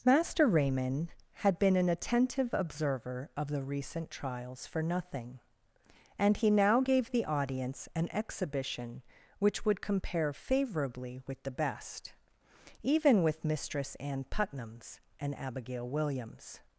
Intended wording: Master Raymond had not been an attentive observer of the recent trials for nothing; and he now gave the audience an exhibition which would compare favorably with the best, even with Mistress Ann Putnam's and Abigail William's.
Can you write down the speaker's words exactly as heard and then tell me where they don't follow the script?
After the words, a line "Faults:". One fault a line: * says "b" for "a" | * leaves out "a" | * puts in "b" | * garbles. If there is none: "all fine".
Master Raymond had been an attentive observer of the recent trials for nothing; and he now gave the audience an exhibition which would compare favorably with the best, even with Mistress Ann Putnam's and Abigail William's.
Faults:
* leaves out "not"